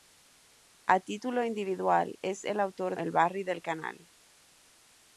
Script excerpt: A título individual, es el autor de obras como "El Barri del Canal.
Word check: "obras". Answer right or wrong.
wrong